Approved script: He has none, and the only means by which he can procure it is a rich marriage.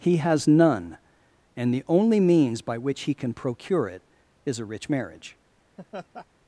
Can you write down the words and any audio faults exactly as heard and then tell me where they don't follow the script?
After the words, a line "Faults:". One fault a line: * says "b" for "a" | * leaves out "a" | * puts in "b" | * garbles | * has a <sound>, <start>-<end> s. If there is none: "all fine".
He has none, and the only means by which he can procure it is a rich marriage.
Faults:
* has a laugh, 5.8-6.3 s